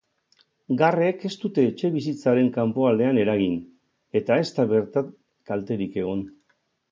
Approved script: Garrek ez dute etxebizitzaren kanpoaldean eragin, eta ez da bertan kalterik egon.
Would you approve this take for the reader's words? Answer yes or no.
yes